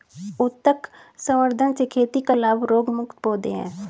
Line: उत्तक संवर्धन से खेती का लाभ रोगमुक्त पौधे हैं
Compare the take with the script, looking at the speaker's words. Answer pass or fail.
pass